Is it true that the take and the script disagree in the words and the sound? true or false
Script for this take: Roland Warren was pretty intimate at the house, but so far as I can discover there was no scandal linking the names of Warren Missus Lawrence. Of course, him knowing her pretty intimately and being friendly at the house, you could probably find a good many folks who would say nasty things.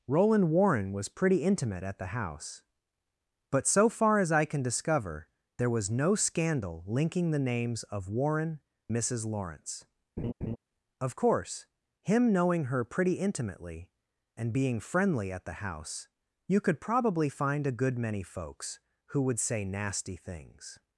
true